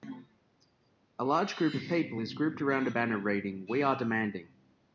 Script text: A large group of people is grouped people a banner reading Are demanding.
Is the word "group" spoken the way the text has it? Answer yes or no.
yes